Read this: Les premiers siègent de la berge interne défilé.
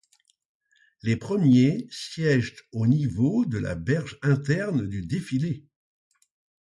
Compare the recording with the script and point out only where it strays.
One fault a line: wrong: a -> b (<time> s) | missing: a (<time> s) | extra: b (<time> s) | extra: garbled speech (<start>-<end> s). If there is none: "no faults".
extra: au niveau (2.7 s)
extra: du (4.9 s)